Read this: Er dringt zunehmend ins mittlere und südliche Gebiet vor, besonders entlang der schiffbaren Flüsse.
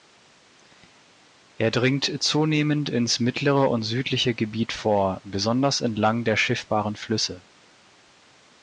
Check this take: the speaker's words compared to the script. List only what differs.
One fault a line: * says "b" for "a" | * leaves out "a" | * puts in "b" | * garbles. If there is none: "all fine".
all fine